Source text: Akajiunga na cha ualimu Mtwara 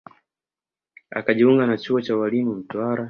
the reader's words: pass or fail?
fail